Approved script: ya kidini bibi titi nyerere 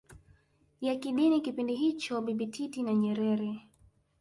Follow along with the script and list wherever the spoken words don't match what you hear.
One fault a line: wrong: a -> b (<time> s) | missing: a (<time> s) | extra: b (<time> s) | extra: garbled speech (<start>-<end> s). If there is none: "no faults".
extra: kipindi hicho (1.4 s)
extra: na (2.8 s)